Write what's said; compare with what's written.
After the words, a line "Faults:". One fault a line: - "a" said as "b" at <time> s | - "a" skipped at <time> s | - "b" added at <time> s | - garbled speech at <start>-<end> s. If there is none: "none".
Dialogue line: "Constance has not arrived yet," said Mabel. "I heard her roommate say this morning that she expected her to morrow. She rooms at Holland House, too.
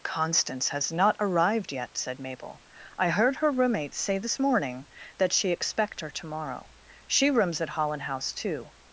"Constance has not arrived yet," said Mabel. "I heard her roommate say this morning that she expect her to morrow. She rooms at Holland House, too.
Faults:
- "expected" said as "expect" at 5.5 s